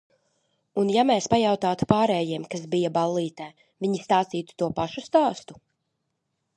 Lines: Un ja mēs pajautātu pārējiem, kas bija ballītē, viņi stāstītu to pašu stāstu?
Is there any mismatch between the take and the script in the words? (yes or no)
no